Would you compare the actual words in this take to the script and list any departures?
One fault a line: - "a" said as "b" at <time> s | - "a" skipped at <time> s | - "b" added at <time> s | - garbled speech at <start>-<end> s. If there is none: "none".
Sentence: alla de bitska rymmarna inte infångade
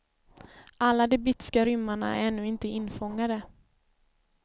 - "är ännu" added at 2.1 s